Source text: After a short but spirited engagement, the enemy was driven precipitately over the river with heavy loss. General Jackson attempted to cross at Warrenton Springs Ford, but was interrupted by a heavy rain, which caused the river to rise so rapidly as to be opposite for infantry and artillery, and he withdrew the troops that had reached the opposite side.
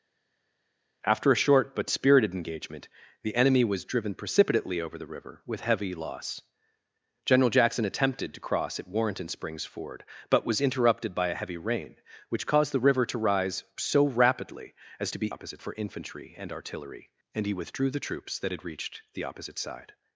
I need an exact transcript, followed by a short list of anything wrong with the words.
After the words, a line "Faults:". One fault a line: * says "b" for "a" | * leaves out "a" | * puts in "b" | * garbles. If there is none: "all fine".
After a short but spirited engagement, the enemy was driven precipitately over the river with heavy loss. General Jackson attempted to cross at Warrenton Springs Ford, but was interrupted by a heavy rain, which caused the river to rise so rapidly as to be opposite for infantry and artillery, and he withdrew the troops that had reached the opposite side.
Faults:
all fine